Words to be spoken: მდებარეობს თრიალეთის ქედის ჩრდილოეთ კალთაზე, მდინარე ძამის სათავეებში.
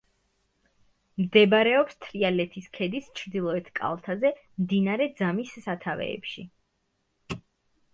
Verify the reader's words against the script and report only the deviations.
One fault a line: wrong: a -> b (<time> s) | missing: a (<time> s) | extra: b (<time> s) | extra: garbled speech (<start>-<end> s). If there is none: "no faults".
no faults